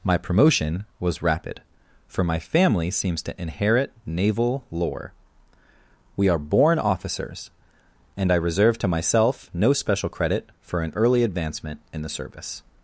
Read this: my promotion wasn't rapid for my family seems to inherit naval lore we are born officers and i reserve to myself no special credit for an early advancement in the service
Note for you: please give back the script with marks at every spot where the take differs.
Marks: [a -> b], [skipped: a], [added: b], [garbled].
my promotion [wasn't -> was] rapid for my family seems to inherit naval lore we are born officers and i reserve to myself no special credit for an early advancement in the service